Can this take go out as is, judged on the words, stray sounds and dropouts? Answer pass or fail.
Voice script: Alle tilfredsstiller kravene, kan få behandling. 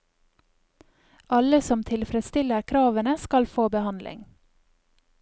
fail